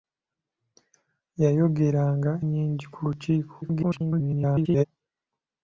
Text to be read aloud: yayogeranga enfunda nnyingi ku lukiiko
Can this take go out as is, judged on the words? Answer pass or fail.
fail